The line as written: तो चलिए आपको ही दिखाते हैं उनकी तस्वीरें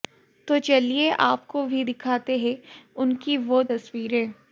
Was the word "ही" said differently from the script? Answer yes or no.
yes